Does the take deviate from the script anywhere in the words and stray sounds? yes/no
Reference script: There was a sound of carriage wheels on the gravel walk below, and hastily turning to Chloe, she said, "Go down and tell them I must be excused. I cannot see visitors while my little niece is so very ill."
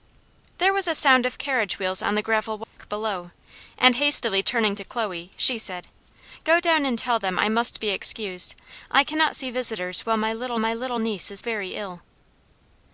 yes